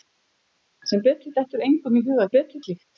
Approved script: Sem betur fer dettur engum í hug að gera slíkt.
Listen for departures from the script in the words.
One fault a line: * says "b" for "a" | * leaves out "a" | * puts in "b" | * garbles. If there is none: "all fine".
* leaves out "fer"
* says "betur" for "gera"